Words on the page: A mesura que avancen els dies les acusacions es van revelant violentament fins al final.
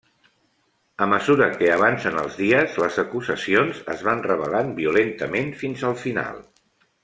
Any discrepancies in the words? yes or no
no